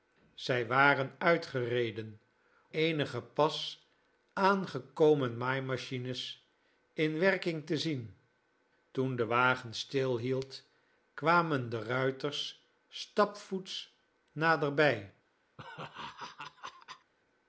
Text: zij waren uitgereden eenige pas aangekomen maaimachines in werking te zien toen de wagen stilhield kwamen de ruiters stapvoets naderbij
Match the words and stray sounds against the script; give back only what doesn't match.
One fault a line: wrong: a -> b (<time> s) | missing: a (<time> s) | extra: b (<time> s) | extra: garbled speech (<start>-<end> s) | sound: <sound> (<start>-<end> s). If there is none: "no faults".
sound: laugh (15.6-17.1 s)